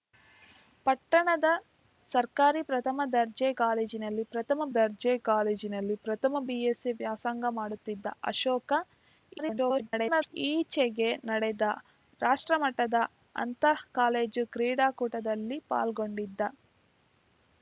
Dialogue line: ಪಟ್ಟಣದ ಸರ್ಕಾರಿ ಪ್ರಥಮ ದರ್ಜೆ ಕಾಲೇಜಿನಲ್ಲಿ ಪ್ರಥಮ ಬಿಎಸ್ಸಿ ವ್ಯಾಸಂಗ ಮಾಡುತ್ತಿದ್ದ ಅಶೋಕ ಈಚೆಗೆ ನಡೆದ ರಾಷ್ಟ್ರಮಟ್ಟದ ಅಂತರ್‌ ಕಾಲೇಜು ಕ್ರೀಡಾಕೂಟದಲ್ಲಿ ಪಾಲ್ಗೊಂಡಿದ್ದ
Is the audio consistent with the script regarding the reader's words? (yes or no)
no